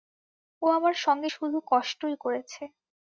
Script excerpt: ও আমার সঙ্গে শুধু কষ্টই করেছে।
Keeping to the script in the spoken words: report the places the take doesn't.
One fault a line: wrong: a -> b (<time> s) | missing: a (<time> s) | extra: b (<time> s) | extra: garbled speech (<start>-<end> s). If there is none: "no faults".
no faults